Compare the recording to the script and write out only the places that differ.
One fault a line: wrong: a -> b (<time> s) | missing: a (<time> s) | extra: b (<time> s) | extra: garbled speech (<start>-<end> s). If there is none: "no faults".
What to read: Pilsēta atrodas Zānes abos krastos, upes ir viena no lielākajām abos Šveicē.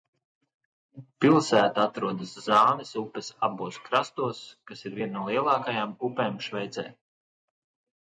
extra: upes (3.0 s)
wrong: upes -> kas (4.7 s)
wrong: abos -> upēm (6.1 s)